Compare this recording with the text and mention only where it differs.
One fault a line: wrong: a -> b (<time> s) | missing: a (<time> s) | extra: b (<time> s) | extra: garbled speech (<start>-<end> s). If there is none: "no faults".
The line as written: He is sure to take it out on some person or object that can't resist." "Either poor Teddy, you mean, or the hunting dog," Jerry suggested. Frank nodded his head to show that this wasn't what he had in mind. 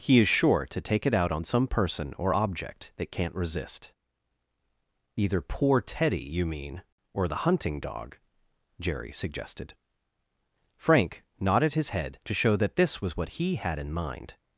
wrong: wasn't -> was (13.0 s)